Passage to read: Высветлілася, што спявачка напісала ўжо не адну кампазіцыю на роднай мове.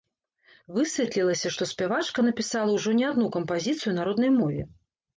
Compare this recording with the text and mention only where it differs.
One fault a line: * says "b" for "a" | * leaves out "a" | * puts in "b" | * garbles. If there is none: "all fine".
all fine